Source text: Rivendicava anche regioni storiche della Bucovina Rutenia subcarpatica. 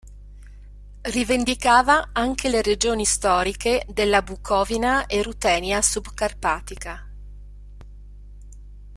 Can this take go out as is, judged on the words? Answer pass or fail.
fail